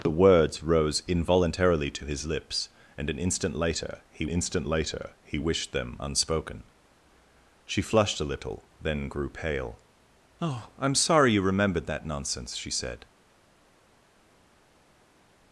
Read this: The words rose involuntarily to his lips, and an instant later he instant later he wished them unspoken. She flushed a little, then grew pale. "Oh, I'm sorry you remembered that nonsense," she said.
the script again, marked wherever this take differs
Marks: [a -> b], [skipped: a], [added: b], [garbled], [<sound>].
The words rose involuntarily to his lips, and an instant later he instant later he wished them unspoken. She flushed a little, then grew pale. "Oh, I'm sorry you remembered that nonsense," she said.